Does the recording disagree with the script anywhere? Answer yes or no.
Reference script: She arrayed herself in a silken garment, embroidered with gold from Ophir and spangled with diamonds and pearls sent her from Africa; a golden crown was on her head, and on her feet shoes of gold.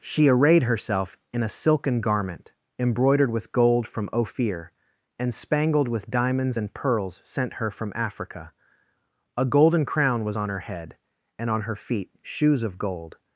no